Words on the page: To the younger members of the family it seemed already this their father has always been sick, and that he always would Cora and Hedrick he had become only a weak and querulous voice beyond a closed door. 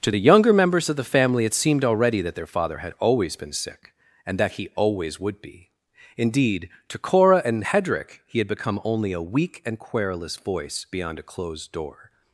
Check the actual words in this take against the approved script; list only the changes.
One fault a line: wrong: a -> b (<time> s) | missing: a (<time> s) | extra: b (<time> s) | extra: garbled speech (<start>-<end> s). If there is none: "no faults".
wrong: this -> that (2.2 s)
wrong: has -> had (2.8 s)
extra: be indeed to (5.4 s)